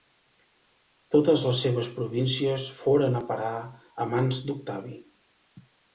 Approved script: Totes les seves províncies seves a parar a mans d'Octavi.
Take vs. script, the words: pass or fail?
fail